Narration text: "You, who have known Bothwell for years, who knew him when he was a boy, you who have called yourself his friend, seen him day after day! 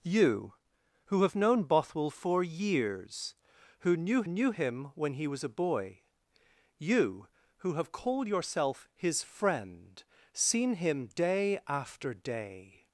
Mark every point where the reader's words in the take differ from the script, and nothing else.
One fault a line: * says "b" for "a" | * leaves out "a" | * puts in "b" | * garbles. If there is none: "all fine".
* puts in "knew"